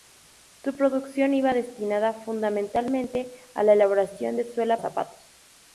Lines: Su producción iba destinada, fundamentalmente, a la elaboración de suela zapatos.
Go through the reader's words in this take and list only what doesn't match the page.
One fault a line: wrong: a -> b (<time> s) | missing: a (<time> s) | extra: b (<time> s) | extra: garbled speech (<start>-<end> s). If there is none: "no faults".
no faults